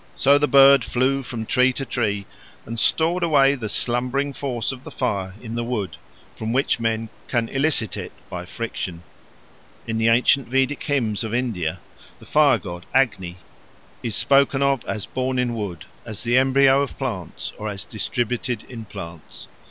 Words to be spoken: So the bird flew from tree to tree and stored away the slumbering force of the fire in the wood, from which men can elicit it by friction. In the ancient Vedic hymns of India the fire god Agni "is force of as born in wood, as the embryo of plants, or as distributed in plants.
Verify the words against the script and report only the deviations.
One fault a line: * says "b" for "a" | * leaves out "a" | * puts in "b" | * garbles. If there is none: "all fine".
* says "spoken" for "force"